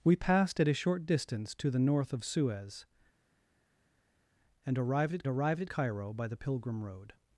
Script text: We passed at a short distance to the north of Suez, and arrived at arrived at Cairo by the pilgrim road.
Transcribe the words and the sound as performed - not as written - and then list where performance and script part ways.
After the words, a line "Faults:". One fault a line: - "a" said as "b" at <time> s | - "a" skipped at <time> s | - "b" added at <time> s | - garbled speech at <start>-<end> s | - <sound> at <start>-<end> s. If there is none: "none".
We passed at a short distance to the north of Suez, and arrived at arrived at Cairo by the pilgrim road.
Faults:
none